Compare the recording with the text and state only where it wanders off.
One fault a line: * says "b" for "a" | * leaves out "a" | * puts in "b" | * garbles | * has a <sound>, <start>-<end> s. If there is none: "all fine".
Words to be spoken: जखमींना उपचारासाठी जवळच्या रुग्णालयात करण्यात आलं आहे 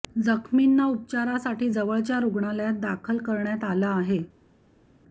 * puts in "दाखल"